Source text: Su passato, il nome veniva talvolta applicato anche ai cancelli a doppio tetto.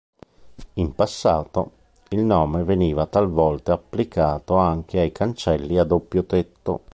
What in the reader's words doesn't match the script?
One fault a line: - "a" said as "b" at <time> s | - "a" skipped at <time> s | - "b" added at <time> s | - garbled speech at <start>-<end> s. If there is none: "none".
- "Su" said as "In" at 0.7 s